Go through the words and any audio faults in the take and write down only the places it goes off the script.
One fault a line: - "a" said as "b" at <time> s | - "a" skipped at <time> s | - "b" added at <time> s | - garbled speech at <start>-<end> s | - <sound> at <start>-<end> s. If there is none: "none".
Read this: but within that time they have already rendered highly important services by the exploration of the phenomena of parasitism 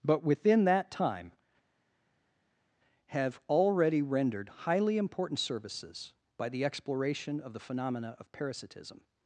- "they" skipped at 1.3 s